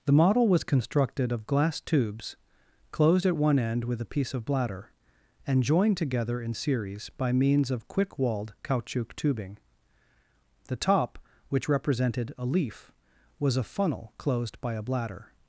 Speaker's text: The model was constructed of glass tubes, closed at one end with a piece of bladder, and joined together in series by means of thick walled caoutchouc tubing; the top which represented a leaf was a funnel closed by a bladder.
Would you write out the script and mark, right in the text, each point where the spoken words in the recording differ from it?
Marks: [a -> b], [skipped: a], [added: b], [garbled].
The model was constructed of glass tubes, closed at one end with a piece of bladder, and joined together in series by means of [thick -> quick] walled caoutchouc tubing; the top which represented a leaf was a funnel closed by a bladder.